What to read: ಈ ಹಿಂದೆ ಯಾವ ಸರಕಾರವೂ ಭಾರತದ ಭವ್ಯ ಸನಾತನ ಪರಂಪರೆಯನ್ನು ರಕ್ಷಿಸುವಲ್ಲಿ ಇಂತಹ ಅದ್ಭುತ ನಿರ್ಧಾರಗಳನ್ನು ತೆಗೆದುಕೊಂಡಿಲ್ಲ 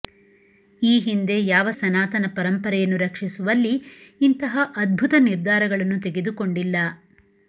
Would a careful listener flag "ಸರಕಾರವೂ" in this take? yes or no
yes